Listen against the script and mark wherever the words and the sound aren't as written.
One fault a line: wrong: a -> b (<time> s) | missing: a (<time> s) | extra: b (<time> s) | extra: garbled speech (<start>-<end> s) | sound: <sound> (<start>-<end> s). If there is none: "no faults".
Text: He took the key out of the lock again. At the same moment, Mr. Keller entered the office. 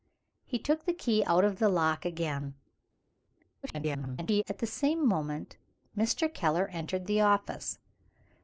extra: garbled speech (3.6-4.4 s)